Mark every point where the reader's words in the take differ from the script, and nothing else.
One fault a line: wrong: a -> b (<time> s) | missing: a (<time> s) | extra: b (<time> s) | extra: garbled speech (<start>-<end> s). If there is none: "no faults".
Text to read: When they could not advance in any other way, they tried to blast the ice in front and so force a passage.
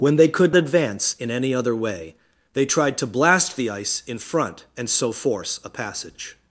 missing: not (0.6 s)